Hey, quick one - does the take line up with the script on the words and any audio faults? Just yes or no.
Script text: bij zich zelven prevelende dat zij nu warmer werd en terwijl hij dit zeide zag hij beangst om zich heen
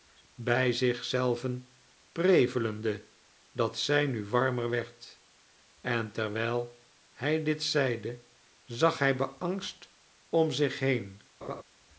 no